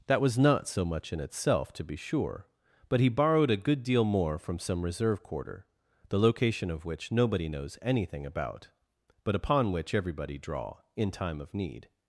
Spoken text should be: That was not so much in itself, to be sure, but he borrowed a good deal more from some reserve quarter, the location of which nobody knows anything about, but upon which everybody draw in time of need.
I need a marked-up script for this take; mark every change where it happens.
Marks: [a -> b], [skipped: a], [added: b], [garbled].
That was not so much in itself, to be sure, but he borrowed a good deal more from some reserve quarter, the location of which nobody knows anything about, but upon which everybody draw in time of need.